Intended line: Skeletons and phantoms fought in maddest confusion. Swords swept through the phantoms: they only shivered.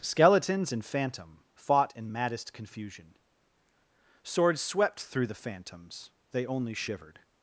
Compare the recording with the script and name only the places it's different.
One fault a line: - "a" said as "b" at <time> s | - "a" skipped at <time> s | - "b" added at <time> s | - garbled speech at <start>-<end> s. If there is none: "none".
- "phantoms" said as "phantom" at 0.8 s